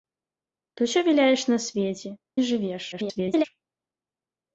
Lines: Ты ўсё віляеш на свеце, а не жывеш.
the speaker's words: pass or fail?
fail